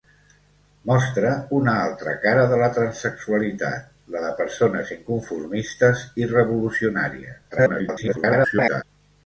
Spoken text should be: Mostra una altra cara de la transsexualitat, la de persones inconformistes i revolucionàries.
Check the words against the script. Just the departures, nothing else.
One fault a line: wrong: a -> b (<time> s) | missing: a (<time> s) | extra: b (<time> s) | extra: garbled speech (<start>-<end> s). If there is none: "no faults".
extra: garbled speech (7.5-8.8 s)